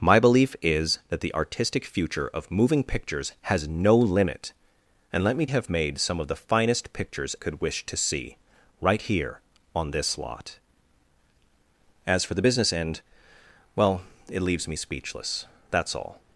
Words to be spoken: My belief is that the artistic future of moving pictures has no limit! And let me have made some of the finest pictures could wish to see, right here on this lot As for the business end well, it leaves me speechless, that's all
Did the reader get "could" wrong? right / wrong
right